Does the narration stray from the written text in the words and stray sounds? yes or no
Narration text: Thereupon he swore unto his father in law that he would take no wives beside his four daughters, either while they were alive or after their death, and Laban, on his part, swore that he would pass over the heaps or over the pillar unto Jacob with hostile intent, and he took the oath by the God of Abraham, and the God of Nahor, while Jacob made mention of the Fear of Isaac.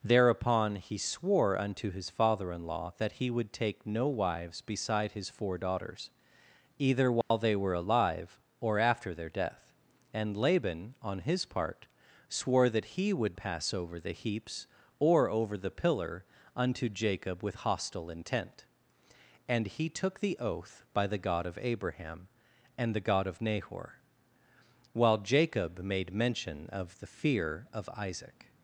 yes